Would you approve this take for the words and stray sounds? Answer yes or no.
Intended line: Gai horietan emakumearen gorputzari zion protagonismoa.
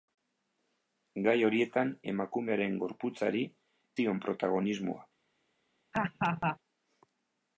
no